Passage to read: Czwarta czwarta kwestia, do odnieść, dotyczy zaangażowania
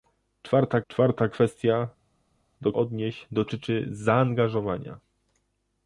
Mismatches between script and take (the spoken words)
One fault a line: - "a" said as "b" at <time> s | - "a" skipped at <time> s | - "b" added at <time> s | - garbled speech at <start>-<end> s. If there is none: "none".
none